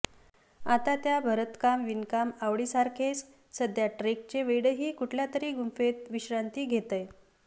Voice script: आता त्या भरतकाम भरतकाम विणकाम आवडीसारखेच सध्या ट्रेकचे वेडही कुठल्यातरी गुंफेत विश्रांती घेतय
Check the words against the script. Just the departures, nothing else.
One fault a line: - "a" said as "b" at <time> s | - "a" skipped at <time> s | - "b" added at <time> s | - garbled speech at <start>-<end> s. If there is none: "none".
- "भरतकाम" skipped at 1.8 s